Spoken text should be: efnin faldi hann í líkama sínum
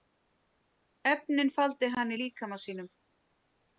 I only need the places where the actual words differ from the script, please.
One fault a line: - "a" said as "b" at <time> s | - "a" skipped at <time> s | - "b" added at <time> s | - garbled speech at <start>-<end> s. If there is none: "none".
none